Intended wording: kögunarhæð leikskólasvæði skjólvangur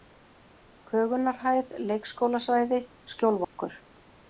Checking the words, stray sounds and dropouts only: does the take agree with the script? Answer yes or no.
no